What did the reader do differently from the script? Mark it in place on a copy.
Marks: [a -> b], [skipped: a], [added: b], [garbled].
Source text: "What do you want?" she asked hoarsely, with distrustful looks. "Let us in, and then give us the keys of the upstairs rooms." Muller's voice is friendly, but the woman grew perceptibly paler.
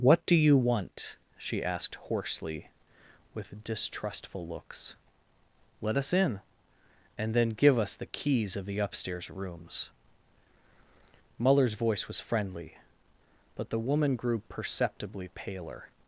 "What do you want?" she asked hoarsely, with distrustful looks. "Let us in, and then give us the keys of the upstairs rooms." Muller's voice [is -> was] friendly, but the woman grew perceptibly paler.